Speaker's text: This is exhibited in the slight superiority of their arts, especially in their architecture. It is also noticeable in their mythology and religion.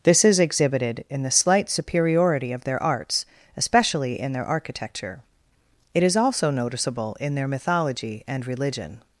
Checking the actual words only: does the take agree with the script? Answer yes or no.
yes